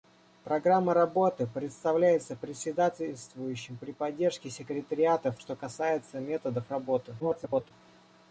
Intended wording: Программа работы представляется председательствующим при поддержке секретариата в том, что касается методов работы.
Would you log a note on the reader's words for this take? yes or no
yes